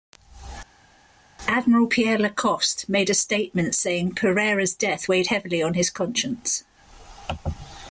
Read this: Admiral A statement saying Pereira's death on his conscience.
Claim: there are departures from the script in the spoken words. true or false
true